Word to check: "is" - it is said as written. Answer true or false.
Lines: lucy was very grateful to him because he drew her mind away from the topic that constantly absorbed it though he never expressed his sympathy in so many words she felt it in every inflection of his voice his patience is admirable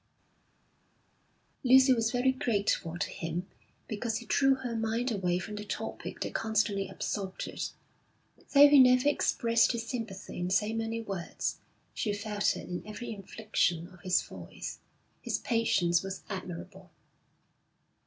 false